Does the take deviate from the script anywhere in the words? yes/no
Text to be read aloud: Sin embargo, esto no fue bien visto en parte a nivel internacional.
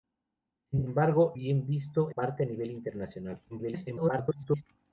yes